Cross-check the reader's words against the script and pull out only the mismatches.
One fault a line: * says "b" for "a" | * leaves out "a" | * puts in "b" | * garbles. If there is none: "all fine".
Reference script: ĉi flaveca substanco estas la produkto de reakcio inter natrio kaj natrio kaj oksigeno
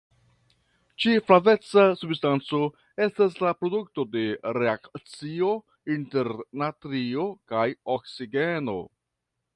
* leaves out "natrio kaj"